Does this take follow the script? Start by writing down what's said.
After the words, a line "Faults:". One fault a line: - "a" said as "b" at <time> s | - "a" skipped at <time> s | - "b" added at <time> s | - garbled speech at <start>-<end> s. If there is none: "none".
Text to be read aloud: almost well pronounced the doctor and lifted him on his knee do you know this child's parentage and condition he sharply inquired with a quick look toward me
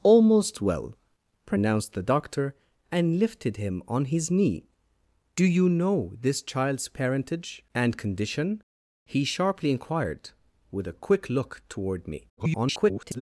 almost well pronounced the doctor and lifted him on his knee do you know this child's parentage and condition he sharply inquired with a quick look toward me [garbled]
Faults:
- garbled speech at 12.4-13.2 s